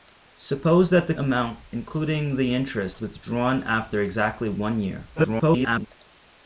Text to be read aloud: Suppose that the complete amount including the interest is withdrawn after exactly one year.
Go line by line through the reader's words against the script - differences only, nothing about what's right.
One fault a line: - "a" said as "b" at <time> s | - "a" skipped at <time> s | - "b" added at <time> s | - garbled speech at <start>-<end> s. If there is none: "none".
- "complete" skipped at 1.1 s
- "is" skipped at 3.0 s
- garbled speech at 5.2-5.9 s